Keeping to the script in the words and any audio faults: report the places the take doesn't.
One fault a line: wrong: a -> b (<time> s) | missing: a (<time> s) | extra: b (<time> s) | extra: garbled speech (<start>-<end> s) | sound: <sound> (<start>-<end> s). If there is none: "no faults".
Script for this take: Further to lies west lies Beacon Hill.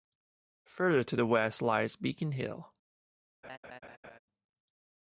wrong: lies -> the (1.1 s)
sound: laugh (3.4-4.2 s)